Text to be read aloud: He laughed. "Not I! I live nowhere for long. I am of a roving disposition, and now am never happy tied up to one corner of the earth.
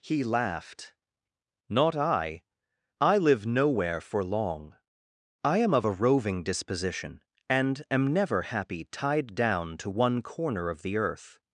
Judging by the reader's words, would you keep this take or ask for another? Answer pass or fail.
fail